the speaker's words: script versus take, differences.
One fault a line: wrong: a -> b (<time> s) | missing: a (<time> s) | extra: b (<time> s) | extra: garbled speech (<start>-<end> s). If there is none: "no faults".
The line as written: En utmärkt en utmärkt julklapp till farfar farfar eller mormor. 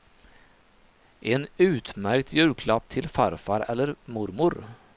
missing: en utmärkt (2.3 s)
missing: farfar (3.6 s)